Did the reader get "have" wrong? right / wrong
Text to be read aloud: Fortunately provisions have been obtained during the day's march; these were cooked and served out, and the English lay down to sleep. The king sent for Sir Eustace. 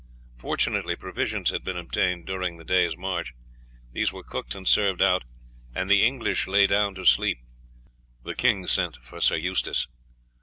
wrong